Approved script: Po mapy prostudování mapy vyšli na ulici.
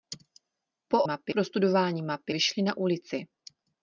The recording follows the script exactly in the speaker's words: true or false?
true